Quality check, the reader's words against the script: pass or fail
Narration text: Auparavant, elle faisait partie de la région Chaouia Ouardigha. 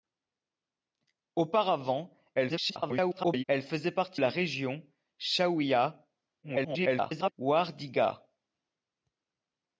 fail